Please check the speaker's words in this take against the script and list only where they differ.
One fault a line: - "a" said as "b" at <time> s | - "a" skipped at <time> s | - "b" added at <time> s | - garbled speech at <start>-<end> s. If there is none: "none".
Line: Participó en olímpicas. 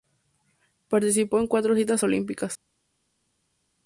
- "cuatro citas" added at 1.5 s